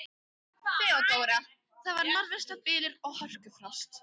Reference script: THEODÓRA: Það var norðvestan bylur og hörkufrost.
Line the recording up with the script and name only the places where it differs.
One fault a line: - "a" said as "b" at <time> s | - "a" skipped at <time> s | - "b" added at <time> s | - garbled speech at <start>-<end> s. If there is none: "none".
none